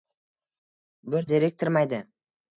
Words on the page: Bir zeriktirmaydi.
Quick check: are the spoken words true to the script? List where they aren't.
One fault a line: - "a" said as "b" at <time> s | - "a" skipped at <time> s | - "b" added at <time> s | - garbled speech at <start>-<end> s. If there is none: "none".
none